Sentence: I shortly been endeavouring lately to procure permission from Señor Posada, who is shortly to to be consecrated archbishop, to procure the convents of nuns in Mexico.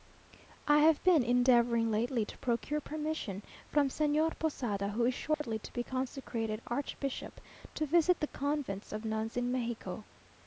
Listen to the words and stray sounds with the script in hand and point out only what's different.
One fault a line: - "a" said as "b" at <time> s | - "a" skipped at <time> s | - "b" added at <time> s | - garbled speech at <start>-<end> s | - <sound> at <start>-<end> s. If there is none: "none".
- "shortly" said as "have" at 0.8 s
- dropout at 5.3-5.4 s
- "to" skipped at 5.7 s
- "procure" said as "visit" at 7.8 s